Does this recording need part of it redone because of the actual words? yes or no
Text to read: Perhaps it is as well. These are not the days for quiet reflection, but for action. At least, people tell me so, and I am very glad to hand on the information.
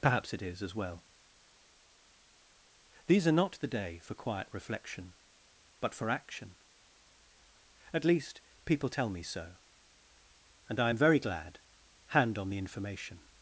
yes